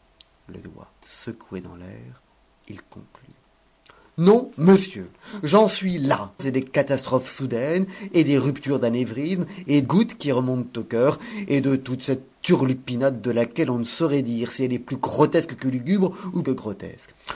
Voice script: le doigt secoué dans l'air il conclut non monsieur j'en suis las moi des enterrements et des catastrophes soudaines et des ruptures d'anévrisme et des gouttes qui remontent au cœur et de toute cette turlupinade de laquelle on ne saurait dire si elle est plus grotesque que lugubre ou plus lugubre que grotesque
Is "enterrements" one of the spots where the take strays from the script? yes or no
yes